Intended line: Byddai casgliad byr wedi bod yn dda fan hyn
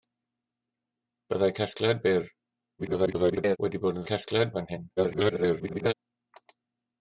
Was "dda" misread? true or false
true